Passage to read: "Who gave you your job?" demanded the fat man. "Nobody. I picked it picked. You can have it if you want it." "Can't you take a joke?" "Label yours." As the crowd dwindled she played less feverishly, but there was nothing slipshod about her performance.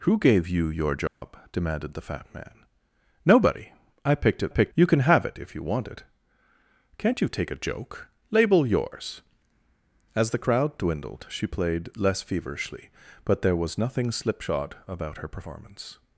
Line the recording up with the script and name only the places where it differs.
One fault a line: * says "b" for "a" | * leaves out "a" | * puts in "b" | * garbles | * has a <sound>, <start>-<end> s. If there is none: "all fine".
* has a dropout, 1.1-1.2 s